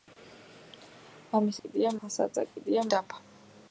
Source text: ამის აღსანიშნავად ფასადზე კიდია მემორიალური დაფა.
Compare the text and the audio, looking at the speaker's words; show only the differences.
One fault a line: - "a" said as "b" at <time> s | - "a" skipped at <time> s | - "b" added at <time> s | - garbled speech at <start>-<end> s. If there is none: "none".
- "აღსანიშნავად" said as "კიდია" at 1.6 s
- "მემორიალური" skipped at 2.9 s